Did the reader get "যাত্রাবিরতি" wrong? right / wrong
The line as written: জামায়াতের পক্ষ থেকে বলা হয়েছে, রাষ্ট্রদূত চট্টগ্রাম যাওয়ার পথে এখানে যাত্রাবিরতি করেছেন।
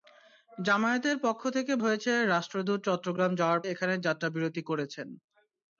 right